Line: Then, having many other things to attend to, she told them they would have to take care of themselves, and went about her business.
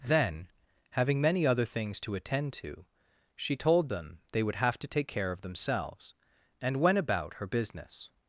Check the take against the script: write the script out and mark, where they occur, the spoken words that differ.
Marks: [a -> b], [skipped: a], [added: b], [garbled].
Then, having many other things to attend to, she told them they would have to take care of themselves, and went about her business.